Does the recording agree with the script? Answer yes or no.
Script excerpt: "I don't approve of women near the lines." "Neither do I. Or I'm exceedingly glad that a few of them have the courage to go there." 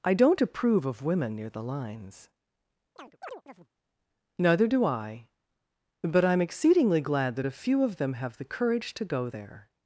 no